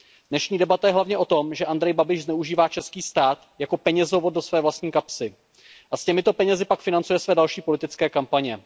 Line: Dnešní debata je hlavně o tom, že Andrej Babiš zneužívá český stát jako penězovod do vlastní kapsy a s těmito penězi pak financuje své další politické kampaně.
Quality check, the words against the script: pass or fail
fail